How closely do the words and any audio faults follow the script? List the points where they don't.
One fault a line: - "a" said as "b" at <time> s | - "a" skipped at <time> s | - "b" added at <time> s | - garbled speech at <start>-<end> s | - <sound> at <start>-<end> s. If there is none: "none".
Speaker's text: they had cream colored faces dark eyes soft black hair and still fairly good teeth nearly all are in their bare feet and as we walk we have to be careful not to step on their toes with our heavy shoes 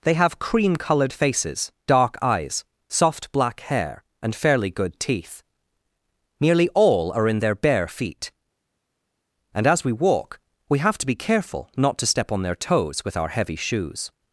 - "had" said as "have" at 0.1 s
- "still" skipped at 4.3 s